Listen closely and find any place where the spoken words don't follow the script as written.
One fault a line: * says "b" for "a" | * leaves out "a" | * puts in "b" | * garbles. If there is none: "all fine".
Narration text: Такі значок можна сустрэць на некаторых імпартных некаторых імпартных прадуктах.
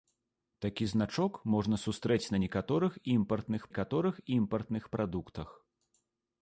all fine